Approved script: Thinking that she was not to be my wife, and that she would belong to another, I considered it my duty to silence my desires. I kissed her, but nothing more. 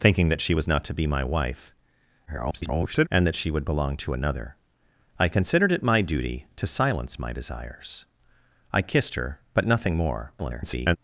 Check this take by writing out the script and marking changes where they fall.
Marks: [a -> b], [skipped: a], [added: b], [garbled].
Thinking that she was not to be my wife, [garbled] and that she would belong to another, I considered it my duty to silence my desires. I kissed her, but nothing more. [garbled]